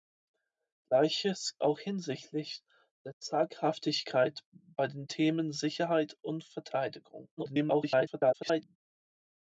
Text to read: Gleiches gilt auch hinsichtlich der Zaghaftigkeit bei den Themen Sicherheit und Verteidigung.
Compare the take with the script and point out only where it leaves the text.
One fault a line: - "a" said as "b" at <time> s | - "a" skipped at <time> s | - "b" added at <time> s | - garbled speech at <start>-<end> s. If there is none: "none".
- "gilt" skipped at 1.6 s
- garbled speech at 7.4-8.8 s